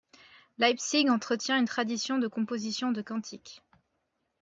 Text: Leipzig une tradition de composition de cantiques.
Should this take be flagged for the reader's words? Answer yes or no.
yes